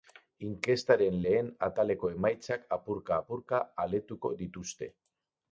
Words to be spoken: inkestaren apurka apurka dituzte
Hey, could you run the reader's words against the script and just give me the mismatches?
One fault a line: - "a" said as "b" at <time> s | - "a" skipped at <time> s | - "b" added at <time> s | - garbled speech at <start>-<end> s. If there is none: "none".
- "lehen ataleko emaitzak" added at 1.2 s
- "aletuko" added at 3.9 s